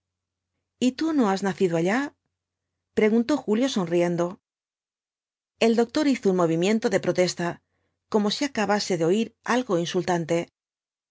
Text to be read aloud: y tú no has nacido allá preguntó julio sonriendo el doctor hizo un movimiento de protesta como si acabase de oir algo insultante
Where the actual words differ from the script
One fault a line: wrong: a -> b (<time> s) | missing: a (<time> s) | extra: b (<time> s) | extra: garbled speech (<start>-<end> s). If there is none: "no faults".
no faults